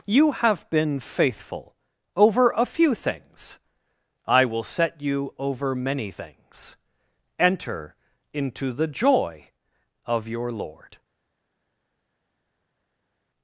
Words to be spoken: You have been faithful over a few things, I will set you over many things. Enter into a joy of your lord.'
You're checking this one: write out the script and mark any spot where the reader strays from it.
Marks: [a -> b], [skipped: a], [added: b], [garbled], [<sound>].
You have been faithful over a few things, I will set you over many things. Enter into [a -> the] joy of your lord.'